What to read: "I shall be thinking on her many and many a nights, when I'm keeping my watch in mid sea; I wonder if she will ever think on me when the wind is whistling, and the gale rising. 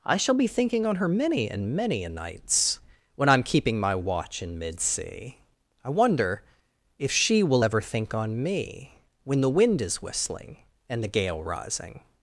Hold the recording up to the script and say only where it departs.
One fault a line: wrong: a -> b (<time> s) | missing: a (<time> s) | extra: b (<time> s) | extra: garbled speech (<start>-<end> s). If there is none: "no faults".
no faults